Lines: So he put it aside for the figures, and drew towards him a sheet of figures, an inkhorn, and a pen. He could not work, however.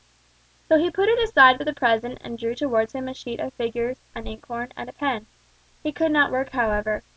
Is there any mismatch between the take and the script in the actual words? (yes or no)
yes